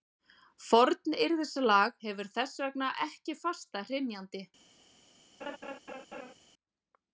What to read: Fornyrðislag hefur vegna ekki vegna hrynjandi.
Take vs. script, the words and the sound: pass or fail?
fail